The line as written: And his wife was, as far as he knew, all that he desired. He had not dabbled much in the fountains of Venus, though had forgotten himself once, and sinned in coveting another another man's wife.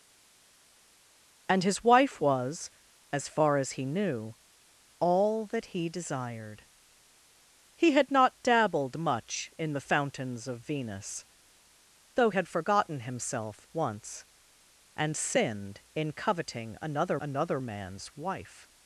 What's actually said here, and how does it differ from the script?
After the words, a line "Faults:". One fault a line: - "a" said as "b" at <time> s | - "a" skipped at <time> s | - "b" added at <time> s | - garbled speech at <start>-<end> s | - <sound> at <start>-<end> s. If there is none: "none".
And his wife was, as far as he knew, all that he desired. He had not dabbled much in the fountains of Venus, though had forgotten himself once, and sinned in coveting another another man's wife.
Faults:
none